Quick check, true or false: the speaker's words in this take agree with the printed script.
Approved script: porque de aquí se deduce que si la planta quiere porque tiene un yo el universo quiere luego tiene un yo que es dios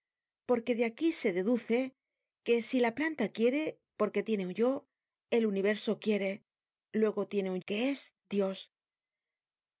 false